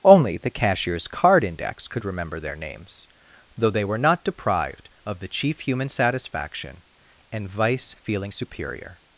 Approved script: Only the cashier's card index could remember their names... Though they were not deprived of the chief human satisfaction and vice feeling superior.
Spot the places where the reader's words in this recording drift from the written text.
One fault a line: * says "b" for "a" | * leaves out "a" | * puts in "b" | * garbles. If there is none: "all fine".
all fine